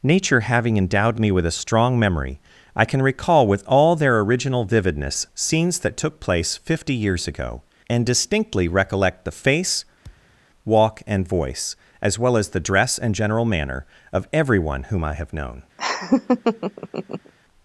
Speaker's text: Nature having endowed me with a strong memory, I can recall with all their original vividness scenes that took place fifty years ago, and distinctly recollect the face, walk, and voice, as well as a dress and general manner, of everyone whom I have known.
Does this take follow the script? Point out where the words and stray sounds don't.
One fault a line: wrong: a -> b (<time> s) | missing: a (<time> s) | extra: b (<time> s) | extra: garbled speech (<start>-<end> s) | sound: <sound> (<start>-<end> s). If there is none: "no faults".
sound: thud (10.0-10.4 s)
wrong: a -> the (12.5 s)
sound: laugh (15.8-17.3 s)